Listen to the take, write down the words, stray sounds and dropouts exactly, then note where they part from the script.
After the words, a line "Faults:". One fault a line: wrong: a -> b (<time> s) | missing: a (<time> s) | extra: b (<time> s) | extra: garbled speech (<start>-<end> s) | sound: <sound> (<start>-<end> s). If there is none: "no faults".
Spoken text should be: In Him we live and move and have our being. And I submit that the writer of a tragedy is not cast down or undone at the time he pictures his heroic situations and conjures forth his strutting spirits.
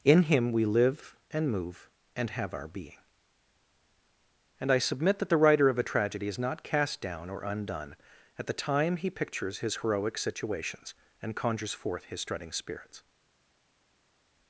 In Him we live and move and have our being. And I submit that the writer of a tragedy is not cast down or undone at the time he pictures his heroic situations and conjures forth his strutting spirits.
Faults:
no faults